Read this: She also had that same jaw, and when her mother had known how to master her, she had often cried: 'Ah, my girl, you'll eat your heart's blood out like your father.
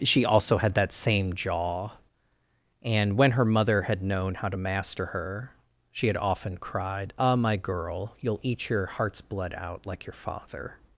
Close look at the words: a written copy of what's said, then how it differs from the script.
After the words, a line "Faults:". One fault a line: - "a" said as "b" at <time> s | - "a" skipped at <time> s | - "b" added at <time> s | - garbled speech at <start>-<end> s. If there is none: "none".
She also had that same jaw, and when her mother had known how to master her, she had often cried: 'Ah, my girl, you'll eat your heart's blood out like your father.
Faults:
none